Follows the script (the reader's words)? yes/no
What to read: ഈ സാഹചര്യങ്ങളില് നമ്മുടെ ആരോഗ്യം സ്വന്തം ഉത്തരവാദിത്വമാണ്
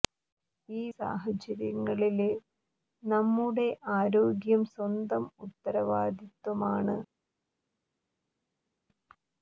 yes